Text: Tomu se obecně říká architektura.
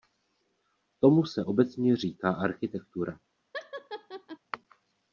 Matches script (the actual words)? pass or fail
pass